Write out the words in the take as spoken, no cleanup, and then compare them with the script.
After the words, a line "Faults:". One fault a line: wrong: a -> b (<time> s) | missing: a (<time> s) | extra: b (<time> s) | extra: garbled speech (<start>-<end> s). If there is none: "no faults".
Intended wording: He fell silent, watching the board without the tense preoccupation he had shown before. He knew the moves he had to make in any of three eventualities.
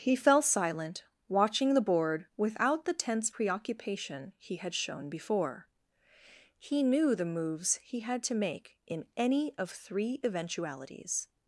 He fell silent, watching the board without the tense preoccupation he had shown before. He knew the moves he had to make in any of three eventualities.
Faults:
no faults